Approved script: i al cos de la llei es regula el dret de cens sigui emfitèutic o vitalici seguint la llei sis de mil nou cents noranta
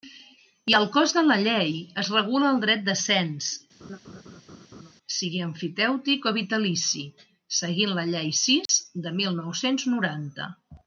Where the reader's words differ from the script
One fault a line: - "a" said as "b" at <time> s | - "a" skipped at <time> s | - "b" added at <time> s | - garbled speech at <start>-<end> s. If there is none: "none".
none